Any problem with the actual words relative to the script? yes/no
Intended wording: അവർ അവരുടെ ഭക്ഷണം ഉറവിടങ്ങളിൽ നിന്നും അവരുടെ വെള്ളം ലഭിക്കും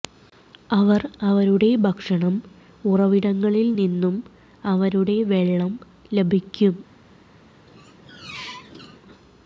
no